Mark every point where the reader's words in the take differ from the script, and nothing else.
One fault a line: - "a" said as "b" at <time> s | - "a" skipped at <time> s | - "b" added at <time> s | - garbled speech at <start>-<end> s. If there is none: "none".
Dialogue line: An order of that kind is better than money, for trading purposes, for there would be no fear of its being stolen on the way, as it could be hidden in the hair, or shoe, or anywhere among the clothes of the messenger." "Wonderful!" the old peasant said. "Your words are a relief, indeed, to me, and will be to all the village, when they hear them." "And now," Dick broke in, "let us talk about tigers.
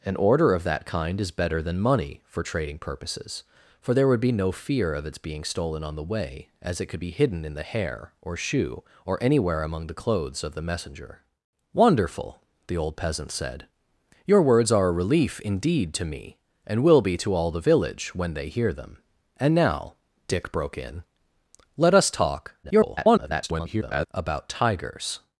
- garbled speech at 22.6-24.1 s